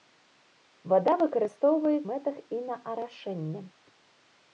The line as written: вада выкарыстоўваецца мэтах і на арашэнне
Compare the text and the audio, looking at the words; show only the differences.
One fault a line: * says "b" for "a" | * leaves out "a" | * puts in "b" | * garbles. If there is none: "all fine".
all fine